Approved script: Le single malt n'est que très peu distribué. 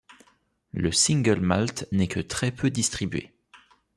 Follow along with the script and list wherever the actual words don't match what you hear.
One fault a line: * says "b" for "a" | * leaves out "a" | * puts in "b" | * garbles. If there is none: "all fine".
all fine